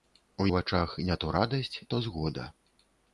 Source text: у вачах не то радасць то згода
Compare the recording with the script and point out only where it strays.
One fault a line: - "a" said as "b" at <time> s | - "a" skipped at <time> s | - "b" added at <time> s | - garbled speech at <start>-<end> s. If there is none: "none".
none